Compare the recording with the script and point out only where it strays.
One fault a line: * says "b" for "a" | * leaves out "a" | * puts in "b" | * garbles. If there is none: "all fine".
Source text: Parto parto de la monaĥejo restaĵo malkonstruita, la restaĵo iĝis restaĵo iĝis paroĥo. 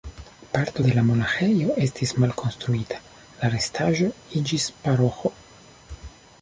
* leaves out "parto"
* says "estis" for "restaĵo"
* leaves out "restaĵo iĝis"